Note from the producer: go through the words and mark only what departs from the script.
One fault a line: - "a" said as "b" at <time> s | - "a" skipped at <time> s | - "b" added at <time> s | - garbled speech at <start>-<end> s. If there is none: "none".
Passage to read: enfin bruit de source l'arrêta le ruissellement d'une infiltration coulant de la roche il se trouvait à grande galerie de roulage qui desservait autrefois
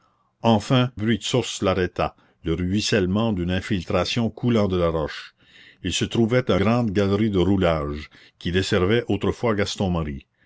none